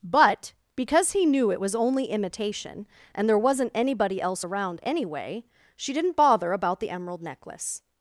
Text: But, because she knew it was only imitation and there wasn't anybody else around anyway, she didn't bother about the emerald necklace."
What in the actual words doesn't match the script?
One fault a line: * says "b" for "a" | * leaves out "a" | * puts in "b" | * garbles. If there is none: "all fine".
* says "he" for "she"